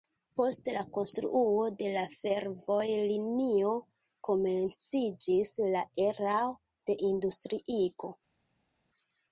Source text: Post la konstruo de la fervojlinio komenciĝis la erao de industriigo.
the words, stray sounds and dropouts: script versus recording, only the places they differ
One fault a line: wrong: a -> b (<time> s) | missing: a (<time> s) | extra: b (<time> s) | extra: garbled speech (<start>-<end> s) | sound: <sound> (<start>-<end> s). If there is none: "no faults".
no faults